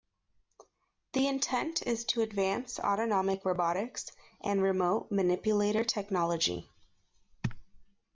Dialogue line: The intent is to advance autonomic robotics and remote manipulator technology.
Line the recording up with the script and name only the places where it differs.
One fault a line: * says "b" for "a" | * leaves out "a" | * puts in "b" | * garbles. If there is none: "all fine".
all fine